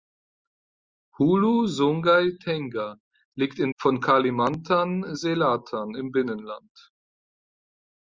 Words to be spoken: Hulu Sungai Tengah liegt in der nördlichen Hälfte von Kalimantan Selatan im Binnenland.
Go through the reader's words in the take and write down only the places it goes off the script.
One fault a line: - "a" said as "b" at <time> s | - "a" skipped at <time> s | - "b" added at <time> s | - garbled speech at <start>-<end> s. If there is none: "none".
- "der nördlichen Hälfte" skipped at 3.7 s